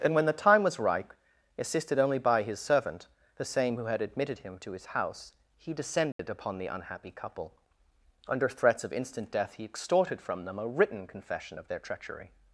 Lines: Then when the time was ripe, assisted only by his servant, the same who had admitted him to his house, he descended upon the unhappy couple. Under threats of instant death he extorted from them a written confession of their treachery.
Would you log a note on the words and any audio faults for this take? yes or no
yes